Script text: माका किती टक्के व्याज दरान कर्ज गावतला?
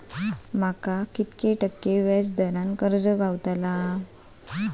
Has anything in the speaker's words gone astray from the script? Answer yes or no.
no